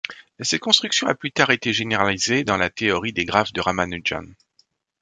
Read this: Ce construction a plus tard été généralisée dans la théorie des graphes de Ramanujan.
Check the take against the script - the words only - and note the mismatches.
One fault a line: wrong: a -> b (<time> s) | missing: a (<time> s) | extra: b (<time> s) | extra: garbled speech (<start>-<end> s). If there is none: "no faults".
wrong: Ce -> Cette (0.4 s)